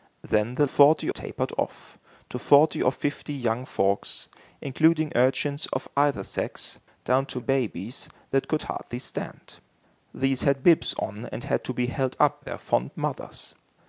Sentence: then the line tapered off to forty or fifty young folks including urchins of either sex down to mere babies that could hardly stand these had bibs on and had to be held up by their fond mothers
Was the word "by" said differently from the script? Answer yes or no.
yes